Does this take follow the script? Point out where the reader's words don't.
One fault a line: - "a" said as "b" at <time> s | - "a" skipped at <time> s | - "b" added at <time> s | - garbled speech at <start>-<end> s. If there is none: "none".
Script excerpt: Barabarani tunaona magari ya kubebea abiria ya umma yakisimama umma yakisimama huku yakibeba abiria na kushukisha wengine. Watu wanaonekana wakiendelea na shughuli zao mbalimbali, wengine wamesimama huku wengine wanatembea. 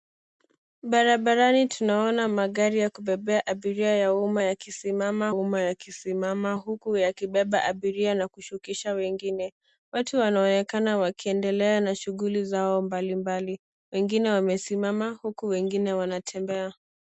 none